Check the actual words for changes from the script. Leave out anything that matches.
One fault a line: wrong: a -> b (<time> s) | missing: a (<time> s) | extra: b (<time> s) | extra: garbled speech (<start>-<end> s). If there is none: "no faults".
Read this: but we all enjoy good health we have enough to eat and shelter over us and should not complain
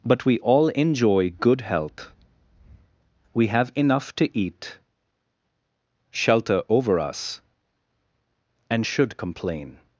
missing: and (4.8 s)
missing: not (9.2 s)